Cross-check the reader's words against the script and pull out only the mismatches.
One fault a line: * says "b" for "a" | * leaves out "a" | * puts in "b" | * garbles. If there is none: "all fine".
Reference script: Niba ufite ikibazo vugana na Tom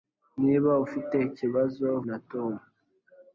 * leaves out "vugana"